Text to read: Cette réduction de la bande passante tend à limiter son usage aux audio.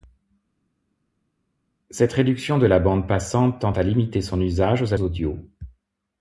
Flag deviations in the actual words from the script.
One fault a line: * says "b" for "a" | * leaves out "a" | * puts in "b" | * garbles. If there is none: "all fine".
all fine